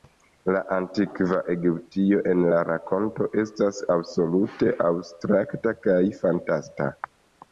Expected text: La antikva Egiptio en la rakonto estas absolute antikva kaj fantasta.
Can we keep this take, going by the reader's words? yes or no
no